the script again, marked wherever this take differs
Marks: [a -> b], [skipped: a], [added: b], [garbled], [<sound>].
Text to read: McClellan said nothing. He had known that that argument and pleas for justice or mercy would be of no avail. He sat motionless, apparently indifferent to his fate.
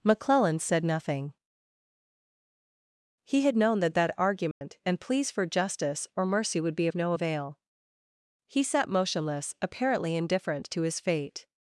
McClellan said nothing. He had known that that argument [dropout] and pleas for justice or mercy would be of no avail. He sat motionless, apparently indifferent to his fate.